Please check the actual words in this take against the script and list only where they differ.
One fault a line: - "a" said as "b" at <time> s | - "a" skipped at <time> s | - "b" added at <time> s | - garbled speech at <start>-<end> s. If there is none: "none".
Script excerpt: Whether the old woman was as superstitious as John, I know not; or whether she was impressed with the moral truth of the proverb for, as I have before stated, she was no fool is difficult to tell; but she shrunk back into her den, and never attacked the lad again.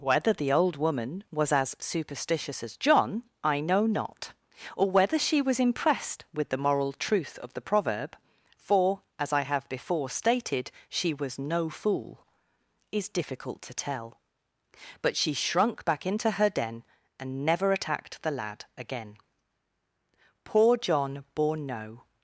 - "Poor John bore no" added at 20.5 s